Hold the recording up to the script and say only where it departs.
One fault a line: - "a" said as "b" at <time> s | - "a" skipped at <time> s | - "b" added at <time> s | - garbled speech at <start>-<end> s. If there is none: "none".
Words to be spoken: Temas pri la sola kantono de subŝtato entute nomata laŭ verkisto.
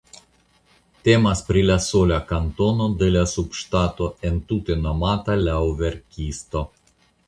- "la" added at 3.2 s